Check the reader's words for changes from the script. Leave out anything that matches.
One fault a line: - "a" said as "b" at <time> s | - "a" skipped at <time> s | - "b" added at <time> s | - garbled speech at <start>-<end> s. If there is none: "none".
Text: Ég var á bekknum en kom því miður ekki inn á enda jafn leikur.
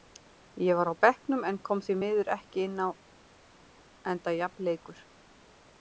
none